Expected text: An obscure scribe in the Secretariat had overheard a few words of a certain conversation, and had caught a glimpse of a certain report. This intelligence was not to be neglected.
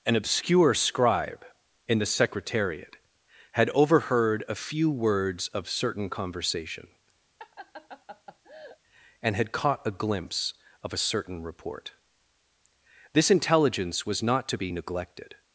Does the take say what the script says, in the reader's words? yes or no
no